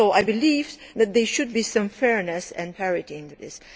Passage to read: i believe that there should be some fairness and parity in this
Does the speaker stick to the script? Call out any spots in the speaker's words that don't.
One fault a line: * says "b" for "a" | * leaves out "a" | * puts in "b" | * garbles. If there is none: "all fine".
all fine